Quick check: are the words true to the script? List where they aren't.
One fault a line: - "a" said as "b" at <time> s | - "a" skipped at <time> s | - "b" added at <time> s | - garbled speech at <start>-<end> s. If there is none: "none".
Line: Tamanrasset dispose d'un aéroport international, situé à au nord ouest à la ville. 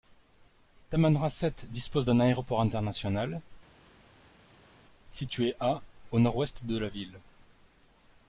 - "à" said as "de" at 6.7 s